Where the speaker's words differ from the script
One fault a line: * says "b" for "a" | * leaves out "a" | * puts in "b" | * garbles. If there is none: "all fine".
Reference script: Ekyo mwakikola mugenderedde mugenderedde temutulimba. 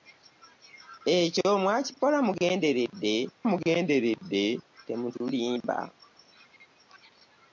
all fine